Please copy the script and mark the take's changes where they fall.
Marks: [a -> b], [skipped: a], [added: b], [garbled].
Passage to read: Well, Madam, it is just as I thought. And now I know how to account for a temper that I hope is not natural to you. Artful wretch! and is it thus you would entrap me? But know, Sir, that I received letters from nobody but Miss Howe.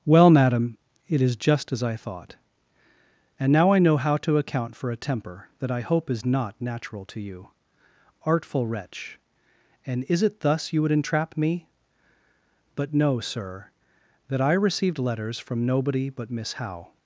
Well, Madam, it is just as I thought. And now I know how to account for a temper that I hope is not natural to you. Artful wretch! and is it thus you would entrap me? But know, Sir, that I received letters from nobody but Miss Howe.